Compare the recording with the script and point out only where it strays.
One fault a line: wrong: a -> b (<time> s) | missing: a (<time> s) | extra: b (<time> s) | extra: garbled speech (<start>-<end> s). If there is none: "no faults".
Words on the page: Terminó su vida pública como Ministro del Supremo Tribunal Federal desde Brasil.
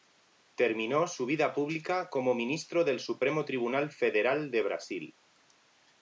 wrong: desde -> de (4.5 s)